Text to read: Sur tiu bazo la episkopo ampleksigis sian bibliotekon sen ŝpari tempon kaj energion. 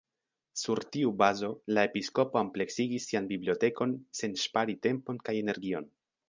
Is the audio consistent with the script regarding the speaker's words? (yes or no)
yes